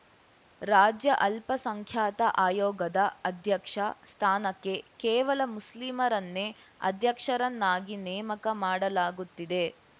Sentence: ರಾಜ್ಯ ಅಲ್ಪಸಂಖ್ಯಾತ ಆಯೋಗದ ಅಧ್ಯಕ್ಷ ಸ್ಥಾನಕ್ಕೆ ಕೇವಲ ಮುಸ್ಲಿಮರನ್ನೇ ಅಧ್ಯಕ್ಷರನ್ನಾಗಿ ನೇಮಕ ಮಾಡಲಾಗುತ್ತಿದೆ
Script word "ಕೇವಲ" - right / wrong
right